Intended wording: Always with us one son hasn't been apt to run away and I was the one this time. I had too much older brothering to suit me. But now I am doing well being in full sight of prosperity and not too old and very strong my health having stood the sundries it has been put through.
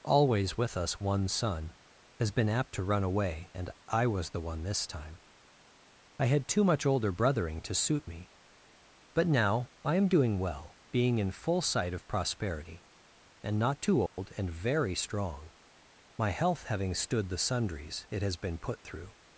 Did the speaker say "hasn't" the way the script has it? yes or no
no